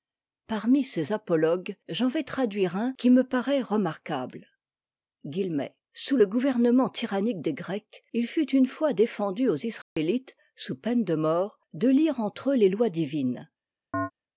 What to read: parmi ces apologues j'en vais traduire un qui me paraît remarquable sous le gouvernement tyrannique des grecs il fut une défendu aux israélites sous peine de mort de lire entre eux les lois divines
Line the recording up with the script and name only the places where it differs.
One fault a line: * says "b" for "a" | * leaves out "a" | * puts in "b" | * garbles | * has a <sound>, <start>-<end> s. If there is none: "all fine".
* puts in "fois"
* has a dropout, 9.8-10.0 s
* has a chirp, 13.9-14.1 s